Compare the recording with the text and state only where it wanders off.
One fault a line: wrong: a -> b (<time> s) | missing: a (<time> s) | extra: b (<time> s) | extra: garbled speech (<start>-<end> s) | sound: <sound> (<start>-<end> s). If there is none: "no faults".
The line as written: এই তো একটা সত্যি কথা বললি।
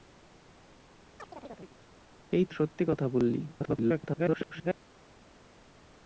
sound: chirp (1.2-1.8 s)
missing: একটা (2.5 s)
extra: garbled speech (3.5-4.8 s)